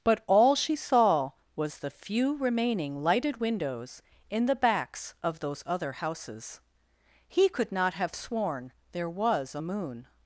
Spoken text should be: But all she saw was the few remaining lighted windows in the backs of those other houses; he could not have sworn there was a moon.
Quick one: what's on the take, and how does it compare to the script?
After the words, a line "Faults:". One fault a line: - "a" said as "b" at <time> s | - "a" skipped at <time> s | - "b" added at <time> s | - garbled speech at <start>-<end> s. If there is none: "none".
But all she saw was the few remaining lighted windows in the backs of those other houses; he could not have sworn there was a moon.
Faults:
none